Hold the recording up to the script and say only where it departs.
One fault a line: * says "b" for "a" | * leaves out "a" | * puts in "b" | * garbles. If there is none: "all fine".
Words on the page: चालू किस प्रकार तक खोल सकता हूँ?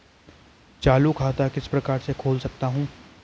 * puts in "खाता"
* says "से" for "तक"